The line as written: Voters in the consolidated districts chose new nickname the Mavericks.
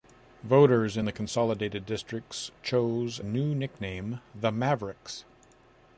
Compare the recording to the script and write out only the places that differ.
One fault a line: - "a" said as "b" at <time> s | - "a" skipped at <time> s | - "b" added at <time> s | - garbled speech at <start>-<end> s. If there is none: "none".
none